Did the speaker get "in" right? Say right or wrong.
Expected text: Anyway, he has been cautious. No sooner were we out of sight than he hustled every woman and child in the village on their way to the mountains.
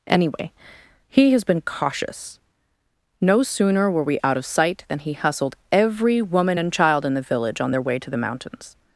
right